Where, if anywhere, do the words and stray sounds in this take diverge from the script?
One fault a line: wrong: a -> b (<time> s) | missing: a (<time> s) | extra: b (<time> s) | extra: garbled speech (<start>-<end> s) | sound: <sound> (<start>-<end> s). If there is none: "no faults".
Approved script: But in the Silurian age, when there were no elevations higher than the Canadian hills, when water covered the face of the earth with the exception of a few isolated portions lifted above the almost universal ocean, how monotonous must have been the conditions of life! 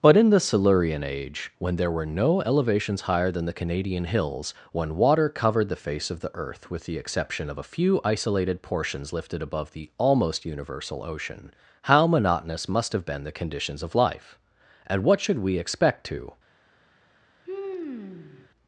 extra: And what should we expect to (14.9 s)
sound: sigh (17.5-18.5 s)